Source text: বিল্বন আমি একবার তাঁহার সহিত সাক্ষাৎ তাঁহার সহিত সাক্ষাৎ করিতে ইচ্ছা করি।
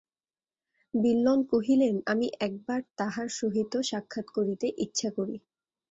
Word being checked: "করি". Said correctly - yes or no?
yes